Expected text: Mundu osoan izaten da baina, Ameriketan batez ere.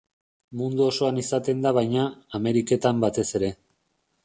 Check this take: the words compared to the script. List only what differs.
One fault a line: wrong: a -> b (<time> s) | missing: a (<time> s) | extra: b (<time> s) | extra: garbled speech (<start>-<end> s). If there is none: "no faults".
no faults